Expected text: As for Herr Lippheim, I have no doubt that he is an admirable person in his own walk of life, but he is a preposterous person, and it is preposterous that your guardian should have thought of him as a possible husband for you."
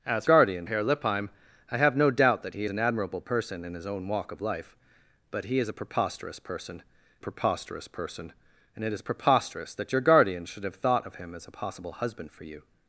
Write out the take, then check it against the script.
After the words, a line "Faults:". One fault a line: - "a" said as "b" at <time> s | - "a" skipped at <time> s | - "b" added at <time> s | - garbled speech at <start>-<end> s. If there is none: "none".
As guardian Herr Lippheim, I have no doubt that he an admirable person in his own walk of life, but he is a preposterous person preposterous person, and it is preposterous that your guardian should have thought of him as a possible husband for you."
Faults:
- "for" said as "guardian" at 0.2 s
- "is" skipped at 2.6 s
- "preposterous person" added at 7.2 s